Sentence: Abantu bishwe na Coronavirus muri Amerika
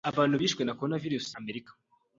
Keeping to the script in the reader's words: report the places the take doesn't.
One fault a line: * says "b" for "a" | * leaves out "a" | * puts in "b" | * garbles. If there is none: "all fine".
* leaves out "muri"